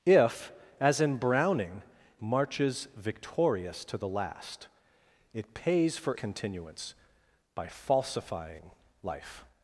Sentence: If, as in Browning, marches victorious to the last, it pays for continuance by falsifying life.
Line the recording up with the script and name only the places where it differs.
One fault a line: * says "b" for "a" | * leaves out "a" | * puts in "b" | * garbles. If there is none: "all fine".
all fine